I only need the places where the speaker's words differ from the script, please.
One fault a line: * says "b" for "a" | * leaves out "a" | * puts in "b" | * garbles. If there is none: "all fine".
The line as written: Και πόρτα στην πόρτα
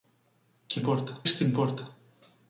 all fine